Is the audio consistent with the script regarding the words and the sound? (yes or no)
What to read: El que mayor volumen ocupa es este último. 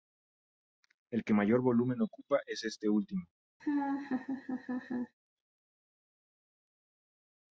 no